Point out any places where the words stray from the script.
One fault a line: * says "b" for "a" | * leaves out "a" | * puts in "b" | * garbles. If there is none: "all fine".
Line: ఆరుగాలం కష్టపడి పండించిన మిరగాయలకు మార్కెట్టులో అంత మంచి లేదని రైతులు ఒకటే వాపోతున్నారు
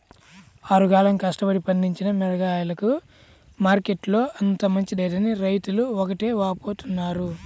all fine